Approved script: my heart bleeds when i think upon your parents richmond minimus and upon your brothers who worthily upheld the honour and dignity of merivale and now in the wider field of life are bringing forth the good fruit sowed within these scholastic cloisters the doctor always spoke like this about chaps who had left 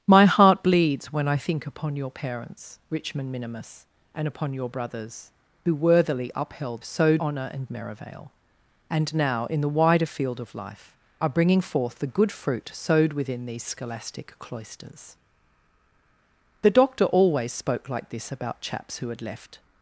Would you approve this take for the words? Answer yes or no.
no